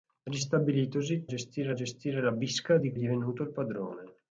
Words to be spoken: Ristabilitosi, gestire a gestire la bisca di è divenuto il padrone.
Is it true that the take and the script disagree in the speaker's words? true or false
false